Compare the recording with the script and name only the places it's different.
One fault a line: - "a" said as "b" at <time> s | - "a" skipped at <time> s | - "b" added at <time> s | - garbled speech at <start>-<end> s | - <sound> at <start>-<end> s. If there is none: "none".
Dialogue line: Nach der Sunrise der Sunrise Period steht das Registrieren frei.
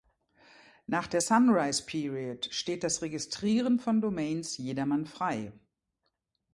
- "der Sunrise" skipped at 1.8 s
- "von Domains jedermann" added at 3.8 s